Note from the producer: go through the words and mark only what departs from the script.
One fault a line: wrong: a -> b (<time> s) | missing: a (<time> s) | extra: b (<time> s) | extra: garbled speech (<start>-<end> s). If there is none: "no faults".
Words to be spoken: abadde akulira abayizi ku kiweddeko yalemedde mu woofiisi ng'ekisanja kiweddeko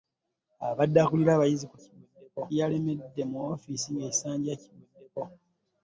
no faults